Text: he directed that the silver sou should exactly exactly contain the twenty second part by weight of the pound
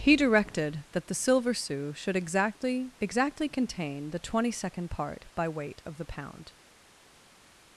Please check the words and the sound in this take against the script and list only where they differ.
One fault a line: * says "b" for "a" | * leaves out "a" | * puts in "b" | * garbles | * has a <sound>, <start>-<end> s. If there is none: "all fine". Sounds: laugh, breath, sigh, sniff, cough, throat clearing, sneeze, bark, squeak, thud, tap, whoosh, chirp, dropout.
all fine